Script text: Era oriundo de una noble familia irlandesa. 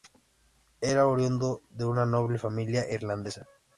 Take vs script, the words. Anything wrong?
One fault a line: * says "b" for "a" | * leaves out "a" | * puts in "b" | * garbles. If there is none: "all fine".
all fine